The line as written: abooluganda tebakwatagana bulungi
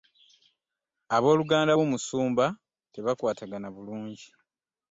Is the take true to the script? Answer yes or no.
no